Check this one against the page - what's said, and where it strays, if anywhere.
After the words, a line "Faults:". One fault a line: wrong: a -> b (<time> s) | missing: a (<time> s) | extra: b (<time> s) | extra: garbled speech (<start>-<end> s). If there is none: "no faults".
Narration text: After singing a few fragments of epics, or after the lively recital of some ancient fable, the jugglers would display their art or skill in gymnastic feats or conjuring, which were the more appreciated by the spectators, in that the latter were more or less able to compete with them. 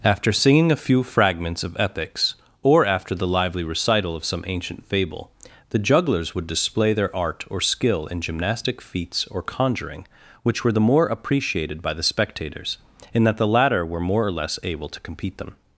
After singing a few fragments of epics, or after the lively recital of some ancient fable, the jugglers would display their art or skill in gymnastic feats or conjuring, which were the more appreciated by the spectators, in that the latter were more or less able to compete them.
Faults:
missing: with (15.4 s)